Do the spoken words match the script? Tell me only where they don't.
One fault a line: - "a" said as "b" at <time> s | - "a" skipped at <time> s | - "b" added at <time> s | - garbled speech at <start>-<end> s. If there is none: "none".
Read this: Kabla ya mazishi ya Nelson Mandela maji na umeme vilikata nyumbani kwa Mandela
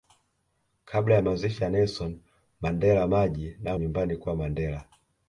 - "umeme vilikata" skipped at 3.8 s